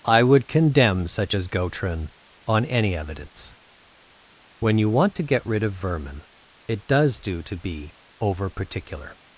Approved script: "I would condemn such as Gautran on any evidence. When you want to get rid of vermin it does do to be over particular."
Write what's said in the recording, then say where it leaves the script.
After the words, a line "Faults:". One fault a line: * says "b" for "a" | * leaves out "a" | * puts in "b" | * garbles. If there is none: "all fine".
"I would condemn such as Gautran on any evidence. When you want to get rid of vermin it does do to be over particular."
Faults:
all fine